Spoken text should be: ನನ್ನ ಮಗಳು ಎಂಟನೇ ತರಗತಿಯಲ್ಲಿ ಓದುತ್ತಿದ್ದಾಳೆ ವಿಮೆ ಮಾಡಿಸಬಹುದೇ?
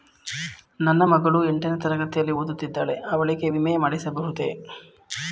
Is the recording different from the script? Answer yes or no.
yes